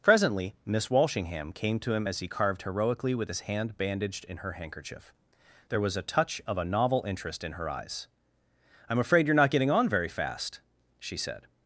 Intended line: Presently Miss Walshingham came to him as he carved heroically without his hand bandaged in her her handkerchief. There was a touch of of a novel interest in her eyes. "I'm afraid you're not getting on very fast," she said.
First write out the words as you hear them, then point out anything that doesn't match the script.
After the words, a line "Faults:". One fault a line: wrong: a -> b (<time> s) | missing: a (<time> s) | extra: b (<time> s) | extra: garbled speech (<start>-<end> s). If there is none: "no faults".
Presently Miss Walshingham came to him as he carved heroically with his hand bandaged in her handkerchief. There was a touch of a novel interest in her eyes. "I'm afraid you're not getting on very fast," she said.
Faults:
wrong: without -> with (3.1 s)
missing: her (4.5 s)
missing: of (6.6 s)